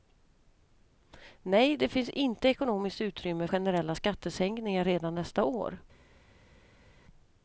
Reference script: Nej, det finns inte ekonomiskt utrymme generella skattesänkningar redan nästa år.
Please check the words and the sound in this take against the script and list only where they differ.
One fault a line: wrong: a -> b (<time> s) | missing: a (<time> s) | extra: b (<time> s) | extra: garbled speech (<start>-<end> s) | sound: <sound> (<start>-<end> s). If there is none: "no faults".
no faults